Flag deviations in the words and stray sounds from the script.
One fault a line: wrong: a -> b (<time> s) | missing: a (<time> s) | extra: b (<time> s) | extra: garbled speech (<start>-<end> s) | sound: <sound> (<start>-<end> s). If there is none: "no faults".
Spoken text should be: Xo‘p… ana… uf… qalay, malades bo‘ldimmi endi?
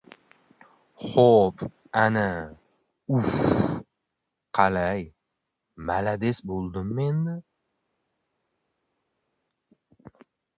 no faults